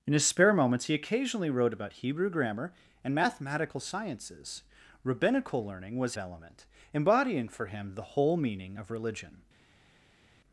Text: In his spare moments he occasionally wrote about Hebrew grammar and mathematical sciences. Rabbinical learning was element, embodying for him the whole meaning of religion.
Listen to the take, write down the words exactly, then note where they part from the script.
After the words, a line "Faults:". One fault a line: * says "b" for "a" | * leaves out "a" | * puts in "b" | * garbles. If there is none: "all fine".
In his spare moments he occasionally wrote about Hebrew grammar and mathematical sciences. Rabbinical learning was element, embodying for him the whole meaning of religion.
Faults:
all fine